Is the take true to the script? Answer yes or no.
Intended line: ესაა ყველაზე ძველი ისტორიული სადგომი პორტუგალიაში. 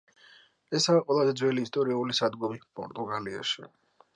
yes